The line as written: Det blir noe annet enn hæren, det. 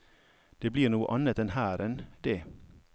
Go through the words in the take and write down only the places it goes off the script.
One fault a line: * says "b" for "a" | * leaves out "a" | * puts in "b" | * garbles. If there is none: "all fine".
all fine